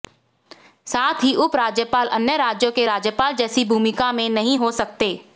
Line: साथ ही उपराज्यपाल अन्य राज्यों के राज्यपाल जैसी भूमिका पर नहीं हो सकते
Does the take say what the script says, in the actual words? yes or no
no